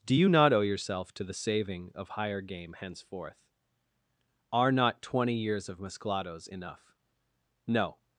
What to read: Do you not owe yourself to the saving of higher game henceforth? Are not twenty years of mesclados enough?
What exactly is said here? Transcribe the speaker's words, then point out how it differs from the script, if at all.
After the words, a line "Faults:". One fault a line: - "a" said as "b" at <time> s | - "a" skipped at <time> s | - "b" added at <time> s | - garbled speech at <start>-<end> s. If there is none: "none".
Do you not owe yourself to the saving of higher game henceforth? Are not twenty years of mesclados enough? No
Faults:
- "No" added at 7.7 s